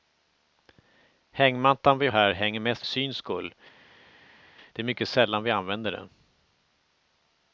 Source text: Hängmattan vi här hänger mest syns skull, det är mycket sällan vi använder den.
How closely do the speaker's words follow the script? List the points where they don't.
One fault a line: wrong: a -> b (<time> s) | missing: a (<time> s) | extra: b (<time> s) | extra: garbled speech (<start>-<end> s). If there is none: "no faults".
no faults